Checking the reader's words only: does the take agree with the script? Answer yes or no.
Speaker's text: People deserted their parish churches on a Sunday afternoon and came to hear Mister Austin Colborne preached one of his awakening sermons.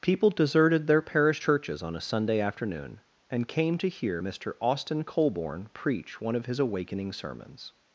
no